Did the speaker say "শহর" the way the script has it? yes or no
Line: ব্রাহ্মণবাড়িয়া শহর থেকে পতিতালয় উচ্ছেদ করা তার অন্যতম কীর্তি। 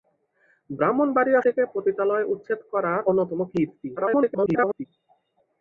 no